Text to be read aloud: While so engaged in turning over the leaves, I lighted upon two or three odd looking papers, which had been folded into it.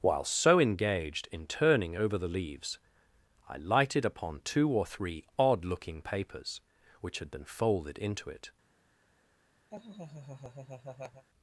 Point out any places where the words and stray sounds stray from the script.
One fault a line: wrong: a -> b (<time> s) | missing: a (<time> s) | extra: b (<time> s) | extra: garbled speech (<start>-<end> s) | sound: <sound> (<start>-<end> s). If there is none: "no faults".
sound: laugh (9.7-11.2 s)